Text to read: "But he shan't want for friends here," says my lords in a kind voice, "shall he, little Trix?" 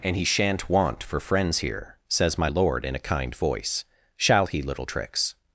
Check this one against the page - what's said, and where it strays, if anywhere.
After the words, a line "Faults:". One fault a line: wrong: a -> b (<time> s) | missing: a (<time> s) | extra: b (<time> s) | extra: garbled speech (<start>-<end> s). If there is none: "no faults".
"And he shan't want for friends here," says my lord in a kind voice, "shall he, little Trix?"
Faults:
wrong: But -> And (0.0 s)
wrong: lords -> lord (2.4 s)